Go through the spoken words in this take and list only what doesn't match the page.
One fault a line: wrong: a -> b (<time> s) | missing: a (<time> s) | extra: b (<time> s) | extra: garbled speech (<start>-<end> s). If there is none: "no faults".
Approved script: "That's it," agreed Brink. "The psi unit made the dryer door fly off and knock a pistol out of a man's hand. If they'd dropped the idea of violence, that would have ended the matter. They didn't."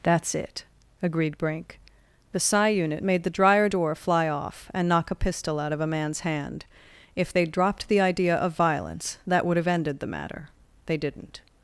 no faults